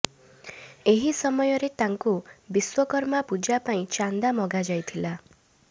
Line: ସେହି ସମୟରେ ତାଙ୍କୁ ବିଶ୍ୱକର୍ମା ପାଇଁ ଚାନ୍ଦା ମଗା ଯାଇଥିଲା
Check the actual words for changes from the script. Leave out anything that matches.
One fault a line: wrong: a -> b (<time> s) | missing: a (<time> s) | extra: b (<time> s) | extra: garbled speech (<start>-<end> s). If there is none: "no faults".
wrong: ସେହି -> ଏହି (0.8 s)
extra: ପୂଜା (3.3 s)